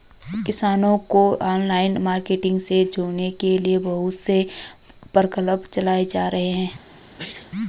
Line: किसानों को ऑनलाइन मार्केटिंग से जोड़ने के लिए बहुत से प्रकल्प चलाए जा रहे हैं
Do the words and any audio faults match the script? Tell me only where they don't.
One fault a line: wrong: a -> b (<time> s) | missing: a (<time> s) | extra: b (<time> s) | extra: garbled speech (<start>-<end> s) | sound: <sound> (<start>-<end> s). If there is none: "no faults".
sound: sneeze (7.2-7.5 s)